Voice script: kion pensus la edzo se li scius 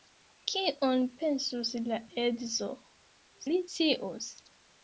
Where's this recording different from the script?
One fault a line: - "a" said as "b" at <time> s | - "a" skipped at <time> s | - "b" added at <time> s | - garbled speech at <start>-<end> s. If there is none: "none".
- "se" skipped at 2.7 s